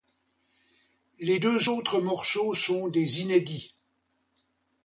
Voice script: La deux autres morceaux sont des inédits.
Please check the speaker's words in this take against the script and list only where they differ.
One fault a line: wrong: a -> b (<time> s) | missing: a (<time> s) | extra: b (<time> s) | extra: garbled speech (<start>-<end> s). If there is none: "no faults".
wrong: La -> Les (1.2 s)